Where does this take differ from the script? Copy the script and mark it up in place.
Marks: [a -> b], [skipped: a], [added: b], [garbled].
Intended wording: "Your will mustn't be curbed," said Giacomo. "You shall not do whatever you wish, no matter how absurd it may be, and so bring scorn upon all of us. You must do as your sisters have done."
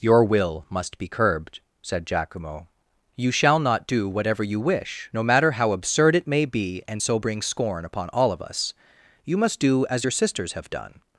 "Your will [mustn't -> must] be curbed," said Giacomo. "You shall not do whatever you wish, no matter how absurd it may be, and so bring scorn upon all of us. You must do as your sisters have done."